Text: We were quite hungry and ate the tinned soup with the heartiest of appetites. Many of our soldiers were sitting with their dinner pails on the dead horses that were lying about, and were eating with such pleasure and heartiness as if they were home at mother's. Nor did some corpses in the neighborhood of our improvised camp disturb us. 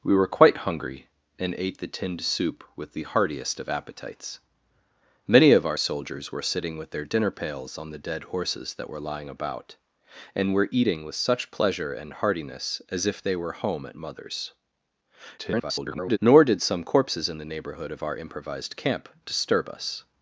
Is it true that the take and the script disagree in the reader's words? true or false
true